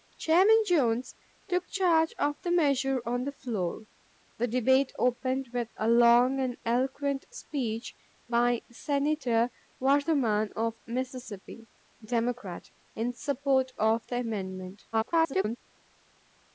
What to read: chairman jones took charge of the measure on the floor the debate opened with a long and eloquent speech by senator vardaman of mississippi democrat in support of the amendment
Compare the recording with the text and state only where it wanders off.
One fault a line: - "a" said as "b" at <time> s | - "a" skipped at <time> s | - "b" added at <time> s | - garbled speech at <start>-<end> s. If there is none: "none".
- garbled speech at 14.9-15.6 s